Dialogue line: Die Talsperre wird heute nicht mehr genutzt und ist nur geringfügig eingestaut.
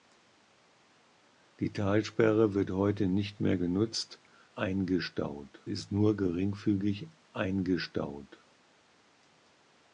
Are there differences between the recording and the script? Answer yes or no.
yes